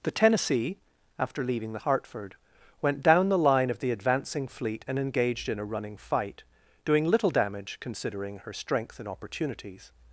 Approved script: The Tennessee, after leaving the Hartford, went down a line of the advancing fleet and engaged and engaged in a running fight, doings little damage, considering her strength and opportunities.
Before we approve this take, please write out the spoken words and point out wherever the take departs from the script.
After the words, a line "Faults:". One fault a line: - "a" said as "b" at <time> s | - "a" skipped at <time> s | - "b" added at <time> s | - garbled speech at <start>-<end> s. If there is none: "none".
The Tennessee, after leaving the Hartford, went down the line of the advancing fleet and engaged in a running fight, doing little damage, considering her strength and opportunities.
Faults:
- "a" said as "the" at 3.3 s
- "and engaged" skipped at 5.5 s
- "doings" said as "doing" at 6.8 s